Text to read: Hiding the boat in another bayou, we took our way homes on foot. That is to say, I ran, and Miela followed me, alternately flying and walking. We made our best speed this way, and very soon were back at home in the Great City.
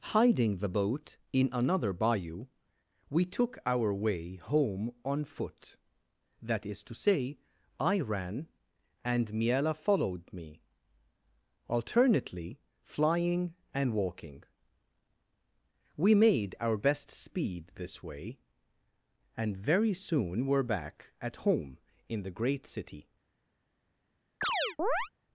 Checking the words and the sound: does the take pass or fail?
fail